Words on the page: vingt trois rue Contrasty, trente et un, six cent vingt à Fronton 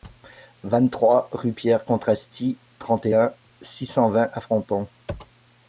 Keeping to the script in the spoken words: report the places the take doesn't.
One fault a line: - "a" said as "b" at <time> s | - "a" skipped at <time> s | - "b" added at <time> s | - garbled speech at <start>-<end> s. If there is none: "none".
- "Pierre" added at 1.5 s